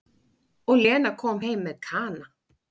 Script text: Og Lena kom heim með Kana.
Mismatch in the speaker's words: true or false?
false